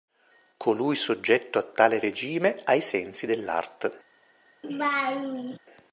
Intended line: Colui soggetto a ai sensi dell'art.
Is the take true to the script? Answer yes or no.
no